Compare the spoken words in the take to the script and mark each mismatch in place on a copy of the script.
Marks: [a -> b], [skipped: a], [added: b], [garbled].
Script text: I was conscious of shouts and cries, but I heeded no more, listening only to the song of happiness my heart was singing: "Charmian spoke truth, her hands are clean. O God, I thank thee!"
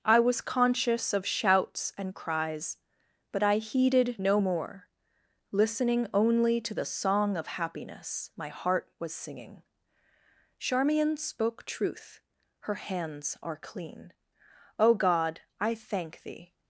I was conscious of shouts and cries, but I heeded no more, listening only to the song of happiness my heart was singing: "Charmian spoke truth, her hands are clean. O God, I thank thee!"